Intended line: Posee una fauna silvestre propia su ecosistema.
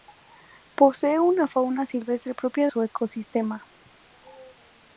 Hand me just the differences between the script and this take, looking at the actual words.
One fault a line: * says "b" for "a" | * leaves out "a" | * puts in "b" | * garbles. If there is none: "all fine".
all fine